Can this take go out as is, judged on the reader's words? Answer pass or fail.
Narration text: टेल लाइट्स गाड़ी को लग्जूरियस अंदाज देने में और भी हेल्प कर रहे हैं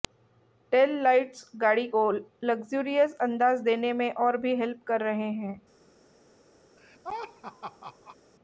pass